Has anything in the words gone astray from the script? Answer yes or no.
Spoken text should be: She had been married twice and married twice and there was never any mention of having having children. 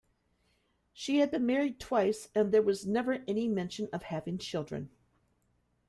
yes